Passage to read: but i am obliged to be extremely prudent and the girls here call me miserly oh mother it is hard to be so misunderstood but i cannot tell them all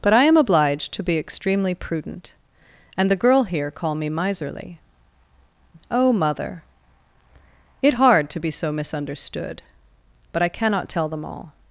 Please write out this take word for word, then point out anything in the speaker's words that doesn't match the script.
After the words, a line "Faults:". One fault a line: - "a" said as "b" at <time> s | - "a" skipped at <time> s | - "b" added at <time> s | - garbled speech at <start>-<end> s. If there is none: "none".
but i am obliged to be extremely prudent and the girl here call me miserly oh mother it hard to be so misunderstood but i cannot tell them all
Faults:
- "girls" said as "girl" at 3.1 s
- "is" skipped at 8.0 s